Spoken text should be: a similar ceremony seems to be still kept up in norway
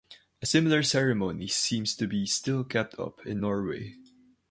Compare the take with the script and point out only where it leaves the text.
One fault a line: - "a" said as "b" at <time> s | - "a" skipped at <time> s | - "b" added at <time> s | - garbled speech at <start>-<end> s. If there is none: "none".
none